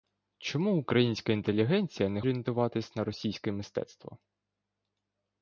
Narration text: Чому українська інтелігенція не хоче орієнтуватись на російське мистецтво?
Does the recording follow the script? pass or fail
fail